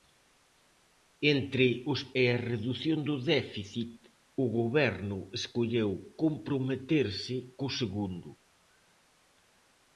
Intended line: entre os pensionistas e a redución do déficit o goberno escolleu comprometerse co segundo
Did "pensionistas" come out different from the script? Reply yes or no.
yes